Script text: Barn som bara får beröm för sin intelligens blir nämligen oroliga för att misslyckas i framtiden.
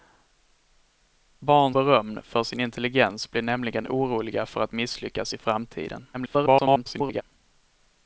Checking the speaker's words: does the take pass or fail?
fail